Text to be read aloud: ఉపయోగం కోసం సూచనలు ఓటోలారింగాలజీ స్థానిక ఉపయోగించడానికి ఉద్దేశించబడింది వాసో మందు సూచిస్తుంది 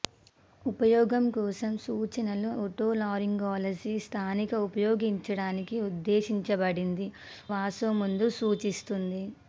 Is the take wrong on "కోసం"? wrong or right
right